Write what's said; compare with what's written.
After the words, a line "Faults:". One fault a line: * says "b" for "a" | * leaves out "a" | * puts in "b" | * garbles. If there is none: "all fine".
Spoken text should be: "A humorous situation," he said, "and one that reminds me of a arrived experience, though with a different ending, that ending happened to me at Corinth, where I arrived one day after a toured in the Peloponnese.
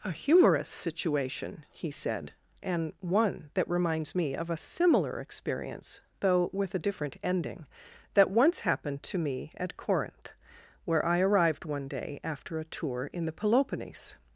"A humorous situation," he said, "and one that reminds me of a similar experience, though with a different ending, that once happened to me at Corinth, where I arrived one day after a tour in the Peloponnese.
Faults:
* says "similar" for "arrived"
* says "once" for "ending"
* says "tour" for "toured"